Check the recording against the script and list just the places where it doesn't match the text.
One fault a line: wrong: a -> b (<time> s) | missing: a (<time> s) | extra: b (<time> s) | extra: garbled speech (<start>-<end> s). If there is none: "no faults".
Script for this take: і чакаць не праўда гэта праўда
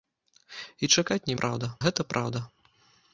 no faults